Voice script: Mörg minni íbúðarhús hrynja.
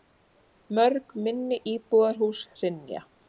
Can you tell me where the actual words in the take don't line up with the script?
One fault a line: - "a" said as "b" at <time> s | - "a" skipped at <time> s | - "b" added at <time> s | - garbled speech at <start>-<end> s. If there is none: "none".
none